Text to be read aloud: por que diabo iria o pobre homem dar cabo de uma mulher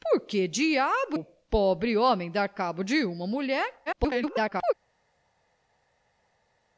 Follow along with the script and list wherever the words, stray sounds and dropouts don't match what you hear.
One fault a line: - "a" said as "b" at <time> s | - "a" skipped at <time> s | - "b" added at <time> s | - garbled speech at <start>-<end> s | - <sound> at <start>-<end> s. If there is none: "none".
- "iria" skipped at 1.2 s
- garbled speech at 3.9-4.7 s